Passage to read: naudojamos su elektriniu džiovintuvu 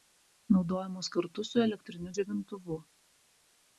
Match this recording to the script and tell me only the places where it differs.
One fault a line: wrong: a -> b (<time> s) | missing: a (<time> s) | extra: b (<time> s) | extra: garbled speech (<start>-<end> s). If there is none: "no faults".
extra: kartu (1.1 s)